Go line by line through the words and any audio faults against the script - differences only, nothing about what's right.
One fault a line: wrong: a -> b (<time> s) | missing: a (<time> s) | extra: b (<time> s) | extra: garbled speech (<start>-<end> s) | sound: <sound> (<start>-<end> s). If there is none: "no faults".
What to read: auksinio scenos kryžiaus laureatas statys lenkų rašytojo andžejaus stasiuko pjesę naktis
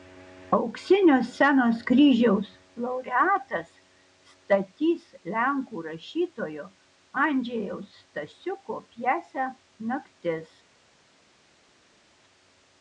no faults